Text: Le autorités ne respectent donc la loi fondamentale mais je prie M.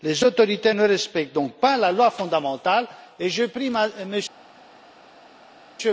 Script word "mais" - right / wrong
wrong